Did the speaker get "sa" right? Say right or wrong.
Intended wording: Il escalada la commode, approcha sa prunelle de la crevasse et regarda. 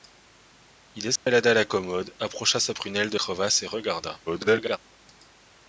right